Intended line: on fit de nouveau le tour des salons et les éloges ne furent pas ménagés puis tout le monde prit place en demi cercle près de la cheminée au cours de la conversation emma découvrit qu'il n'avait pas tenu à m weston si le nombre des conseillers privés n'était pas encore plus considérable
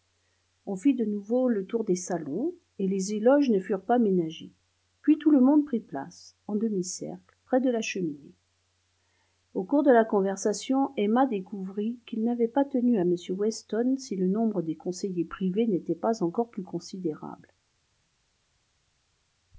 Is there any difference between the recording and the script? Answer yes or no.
no